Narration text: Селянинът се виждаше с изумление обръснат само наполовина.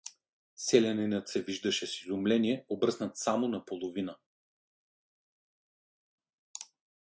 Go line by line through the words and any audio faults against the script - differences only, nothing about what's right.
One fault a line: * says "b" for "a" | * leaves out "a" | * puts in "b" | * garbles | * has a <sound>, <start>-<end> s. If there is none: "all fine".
all fine